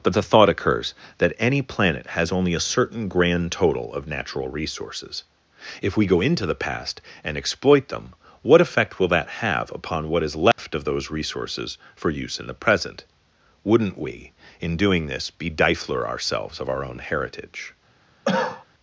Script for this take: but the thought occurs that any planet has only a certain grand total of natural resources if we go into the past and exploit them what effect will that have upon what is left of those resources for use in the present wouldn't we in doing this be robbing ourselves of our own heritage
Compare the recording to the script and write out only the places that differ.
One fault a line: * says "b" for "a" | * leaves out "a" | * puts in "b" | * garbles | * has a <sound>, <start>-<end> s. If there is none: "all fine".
* has a dropout, 10.5-10.6 s
* says "difler" for "robbing"
* has a cough, 18.2-18.6 s